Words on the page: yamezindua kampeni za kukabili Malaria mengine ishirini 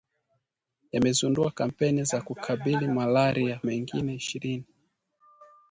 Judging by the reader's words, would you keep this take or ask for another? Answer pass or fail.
pass